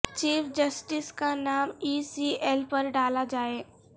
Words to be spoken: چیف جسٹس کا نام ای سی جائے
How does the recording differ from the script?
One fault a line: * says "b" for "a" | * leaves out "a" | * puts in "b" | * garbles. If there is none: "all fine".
* puts in "ایل پر ڈالا"